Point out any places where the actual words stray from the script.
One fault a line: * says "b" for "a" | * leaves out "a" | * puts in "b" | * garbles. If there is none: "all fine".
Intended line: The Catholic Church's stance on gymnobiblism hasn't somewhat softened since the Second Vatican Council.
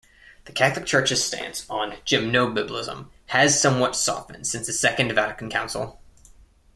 * says "has" for "hasn't"